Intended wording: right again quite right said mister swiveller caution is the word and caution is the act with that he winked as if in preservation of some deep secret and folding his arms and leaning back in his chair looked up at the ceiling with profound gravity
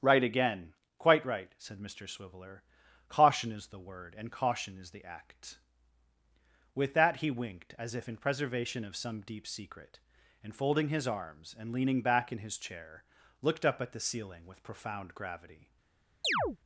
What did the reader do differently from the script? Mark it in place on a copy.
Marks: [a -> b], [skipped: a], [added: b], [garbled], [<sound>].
right again quite right said mister swiveller caution is the word and caution is the act with that he winked as if in preservation of some deep secret and folding his arms and leaning back in his chair looked up at the ceiling with profound gravity [chirp]